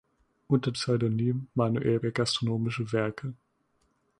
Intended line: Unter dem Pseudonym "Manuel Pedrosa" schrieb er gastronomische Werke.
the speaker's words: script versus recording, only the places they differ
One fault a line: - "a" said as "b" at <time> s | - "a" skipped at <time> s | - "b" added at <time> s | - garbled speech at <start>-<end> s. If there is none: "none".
- "dem" skipped at 0.7 s
- "Pedrosa schrieb" skipped at 2.0 s